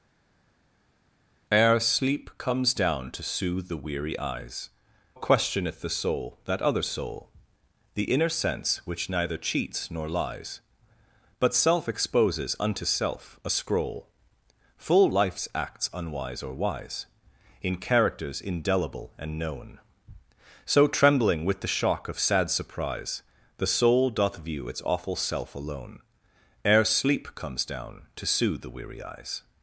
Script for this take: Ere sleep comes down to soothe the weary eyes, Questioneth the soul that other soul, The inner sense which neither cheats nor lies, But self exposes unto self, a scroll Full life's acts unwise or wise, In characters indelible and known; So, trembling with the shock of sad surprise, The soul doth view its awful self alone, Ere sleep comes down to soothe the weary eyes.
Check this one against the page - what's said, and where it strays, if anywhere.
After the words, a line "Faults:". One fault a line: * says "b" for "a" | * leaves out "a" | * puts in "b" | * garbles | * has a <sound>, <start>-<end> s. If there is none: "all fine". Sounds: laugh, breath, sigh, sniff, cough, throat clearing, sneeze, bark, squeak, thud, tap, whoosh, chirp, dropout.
Ere sleep comes down to soothe the weary eyes, Questioneth the soul that other soul, The inner sense which neither cheats nor lies, But self exposes unto self, a scroll Full life's acts unwise or wise, In characters indelible and known; So, trembling with the shock of sad surprise, The soul doth view its awful self alone, Ere sleep comes down to soothe the weary eyes.
Faults:
all fine